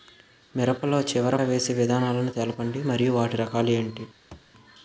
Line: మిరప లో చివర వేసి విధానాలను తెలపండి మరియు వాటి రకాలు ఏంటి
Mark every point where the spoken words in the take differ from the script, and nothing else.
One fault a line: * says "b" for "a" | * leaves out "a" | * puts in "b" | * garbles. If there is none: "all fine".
all fine